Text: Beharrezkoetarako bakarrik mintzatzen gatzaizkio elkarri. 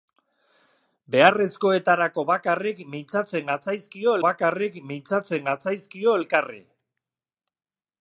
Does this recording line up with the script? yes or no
no